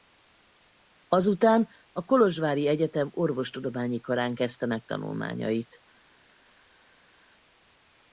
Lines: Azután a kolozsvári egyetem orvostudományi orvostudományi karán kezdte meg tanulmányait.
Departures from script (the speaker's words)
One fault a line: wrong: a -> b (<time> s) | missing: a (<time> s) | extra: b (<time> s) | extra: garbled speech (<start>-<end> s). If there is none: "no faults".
missing: orvostudományi (4.0 s)